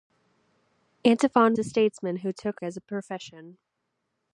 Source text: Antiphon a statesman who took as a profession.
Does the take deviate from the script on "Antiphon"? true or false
false